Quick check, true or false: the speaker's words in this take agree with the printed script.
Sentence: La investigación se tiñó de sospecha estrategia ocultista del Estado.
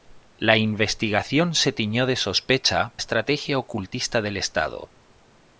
true